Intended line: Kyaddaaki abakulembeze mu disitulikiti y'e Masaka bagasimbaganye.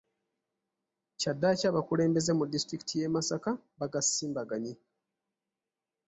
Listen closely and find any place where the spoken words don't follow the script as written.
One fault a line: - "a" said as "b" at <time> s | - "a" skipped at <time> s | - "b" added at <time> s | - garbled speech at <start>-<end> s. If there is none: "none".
none